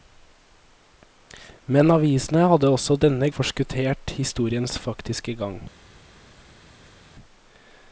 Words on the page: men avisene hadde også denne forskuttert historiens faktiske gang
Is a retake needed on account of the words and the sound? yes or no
no